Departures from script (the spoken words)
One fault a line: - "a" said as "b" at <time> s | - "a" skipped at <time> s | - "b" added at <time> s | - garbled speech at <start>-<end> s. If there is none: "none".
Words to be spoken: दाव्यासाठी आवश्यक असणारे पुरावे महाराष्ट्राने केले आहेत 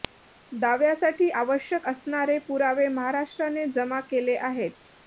- "जमा" added at 3.7 s